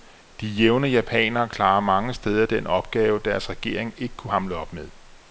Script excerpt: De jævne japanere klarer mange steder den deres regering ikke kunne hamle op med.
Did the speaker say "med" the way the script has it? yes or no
yes